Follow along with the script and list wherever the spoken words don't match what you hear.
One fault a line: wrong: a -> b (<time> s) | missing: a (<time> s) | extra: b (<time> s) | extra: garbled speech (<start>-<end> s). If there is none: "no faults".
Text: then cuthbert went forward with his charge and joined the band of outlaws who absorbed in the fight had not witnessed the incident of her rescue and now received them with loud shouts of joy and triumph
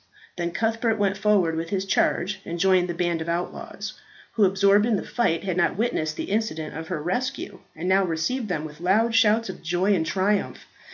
no faults